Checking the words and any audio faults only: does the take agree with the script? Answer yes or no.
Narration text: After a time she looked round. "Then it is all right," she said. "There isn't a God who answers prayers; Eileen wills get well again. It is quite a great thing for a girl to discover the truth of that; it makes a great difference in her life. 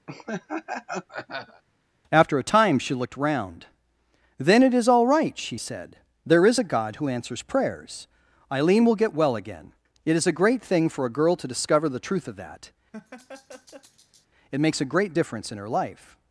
no